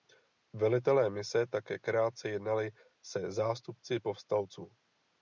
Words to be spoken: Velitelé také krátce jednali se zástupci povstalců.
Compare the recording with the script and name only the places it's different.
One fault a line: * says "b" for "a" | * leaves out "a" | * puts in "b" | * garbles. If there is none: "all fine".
* puts in "mise"